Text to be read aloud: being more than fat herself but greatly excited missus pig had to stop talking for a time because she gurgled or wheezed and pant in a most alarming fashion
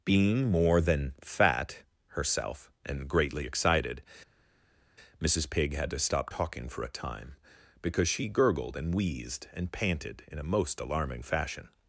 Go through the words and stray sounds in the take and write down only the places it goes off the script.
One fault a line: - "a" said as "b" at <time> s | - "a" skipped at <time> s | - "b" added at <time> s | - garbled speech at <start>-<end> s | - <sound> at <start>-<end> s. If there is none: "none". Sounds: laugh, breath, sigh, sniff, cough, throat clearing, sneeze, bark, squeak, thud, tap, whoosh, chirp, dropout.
- "but" said as "and" at 2.8 s
- "or" said as "and" at 8.8 s
- "pant" said as "panted" at 9.7 s